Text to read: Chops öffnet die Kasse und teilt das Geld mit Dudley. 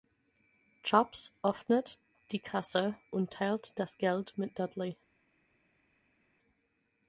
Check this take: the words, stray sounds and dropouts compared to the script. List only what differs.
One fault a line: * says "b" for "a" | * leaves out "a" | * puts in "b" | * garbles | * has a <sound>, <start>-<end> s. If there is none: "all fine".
all fine